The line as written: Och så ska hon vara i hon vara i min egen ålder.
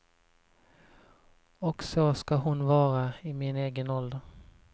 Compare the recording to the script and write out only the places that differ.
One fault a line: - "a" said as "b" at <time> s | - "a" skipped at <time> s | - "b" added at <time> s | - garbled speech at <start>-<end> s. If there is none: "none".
- "hon vara i" skipped at 3.3 s